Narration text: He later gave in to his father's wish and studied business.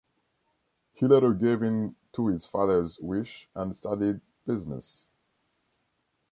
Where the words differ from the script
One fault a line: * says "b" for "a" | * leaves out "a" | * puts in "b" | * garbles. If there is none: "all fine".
all fine